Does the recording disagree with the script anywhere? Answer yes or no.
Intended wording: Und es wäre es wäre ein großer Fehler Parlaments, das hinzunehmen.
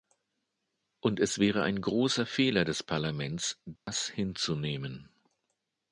yes